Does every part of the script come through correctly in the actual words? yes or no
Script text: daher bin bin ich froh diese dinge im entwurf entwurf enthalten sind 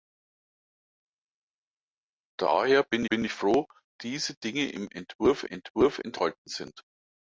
yes